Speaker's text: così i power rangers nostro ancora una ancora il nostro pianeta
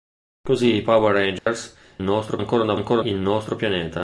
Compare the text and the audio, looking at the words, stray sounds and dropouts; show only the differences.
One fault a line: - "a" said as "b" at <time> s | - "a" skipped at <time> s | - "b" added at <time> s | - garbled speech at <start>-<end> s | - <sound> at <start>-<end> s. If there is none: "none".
- dropout at 1.4-1.5 s